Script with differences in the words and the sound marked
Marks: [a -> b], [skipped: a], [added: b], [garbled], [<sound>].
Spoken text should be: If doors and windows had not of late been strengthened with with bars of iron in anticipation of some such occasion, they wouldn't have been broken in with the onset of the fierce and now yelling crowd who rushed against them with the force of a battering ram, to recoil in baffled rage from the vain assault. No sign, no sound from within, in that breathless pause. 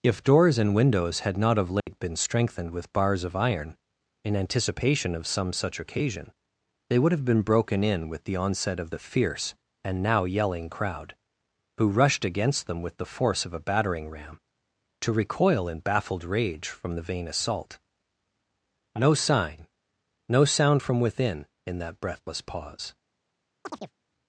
If doors and windows had not of late [dropout] been strengthened with [skipped: with] bars of iron in anticipation of some such occasion, they [wouldn't -> would] have been broken in with the onset of the fierce and now yelling crowd who rushed against them with the force of a battering ram, to recoil in baffled rage from the vain assault. No sign, no sound from within, in that breathless pause. [chirp]